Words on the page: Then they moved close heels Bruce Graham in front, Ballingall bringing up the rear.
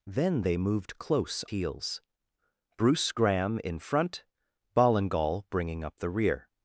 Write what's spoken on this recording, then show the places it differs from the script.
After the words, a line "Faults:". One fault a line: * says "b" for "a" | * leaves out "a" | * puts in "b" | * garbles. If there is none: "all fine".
Then they moved close heels Bruce Graham in front, Ballingall bringing up the rear.
Faults:
all fine